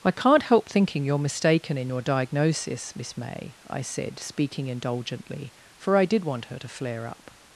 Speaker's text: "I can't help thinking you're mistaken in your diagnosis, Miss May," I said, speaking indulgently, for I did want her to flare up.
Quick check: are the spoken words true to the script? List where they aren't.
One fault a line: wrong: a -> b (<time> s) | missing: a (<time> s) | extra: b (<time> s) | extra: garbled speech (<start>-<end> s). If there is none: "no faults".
no faults